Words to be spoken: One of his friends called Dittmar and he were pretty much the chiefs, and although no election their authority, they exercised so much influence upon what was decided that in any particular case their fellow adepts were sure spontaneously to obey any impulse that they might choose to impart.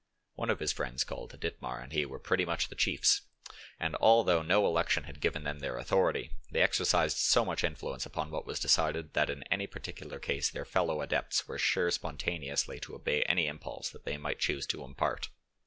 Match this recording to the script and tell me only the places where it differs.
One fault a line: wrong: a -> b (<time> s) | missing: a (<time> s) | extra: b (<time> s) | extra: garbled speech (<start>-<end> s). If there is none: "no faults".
extra: had given them (5.0 s)